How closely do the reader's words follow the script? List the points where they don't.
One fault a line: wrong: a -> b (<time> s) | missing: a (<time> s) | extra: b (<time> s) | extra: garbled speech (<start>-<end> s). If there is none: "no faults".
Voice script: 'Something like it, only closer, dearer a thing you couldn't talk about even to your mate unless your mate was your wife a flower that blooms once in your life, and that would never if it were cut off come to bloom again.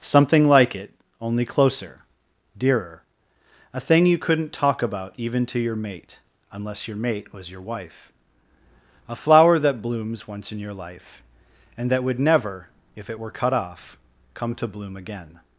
no faults